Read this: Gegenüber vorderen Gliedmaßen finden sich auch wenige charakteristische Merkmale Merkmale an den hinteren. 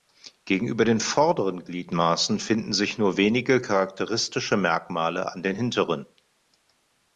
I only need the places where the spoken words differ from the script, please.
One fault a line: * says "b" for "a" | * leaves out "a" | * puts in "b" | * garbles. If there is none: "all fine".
* puts in "den"
* says "nur" for "auch"
* leaves out "Merkmale"